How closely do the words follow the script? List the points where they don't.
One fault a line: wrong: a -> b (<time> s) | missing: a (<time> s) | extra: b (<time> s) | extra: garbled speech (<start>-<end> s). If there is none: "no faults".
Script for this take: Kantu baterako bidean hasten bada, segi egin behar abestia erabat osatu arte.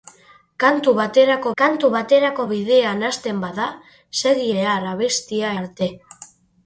extra: kantu baterako (1.6 s)
missing: egin (4.5 s)
missing: erabat osatu (5.6 s)